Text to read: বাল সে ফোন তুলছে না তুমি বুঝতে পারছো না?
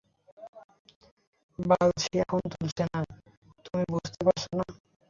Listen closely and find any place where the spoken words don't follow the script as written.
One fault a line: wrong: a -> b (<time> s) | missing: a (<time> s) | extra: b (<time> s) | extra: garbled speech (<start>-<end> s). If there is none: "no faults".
no faults